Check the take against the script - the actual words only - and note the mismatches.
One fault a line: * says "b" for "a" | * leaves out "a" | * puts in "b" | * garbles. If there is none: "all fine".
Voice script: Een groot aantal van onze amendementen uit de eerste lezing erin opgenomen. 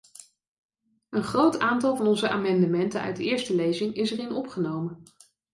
* puts in "is"